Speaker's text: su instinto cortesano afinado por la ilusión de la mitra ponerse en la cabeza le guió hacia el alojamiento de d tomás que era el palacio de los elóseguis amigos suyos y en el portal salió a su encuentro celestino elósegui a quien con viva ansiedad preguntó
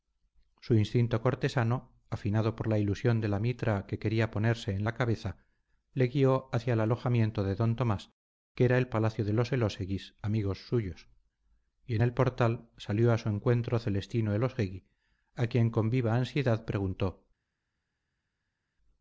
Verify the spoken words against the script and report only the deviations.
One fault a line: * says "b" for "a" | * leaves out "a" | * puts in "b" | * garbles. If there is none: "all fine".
* puts in "que quería"